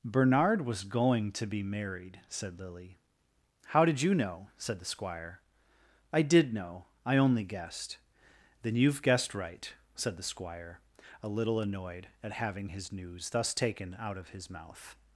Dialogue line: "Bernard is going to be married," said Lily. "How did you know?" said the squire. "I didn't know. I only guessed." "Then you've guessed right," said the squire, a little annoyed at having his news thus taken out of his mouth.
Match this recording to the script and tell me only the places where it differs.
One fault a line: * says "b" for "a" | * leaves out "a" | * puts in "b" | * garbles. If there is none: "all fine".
* says "was" for "is"
* says "did" for "didn't"